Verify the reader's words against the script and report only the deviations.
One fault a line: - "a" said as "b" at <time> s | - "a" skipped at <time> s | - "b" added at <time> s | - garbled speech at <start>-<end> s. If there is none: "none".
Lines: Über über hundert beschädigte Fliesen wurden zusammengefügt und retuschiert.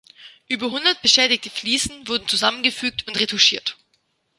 - "über" skipped at 0.7 s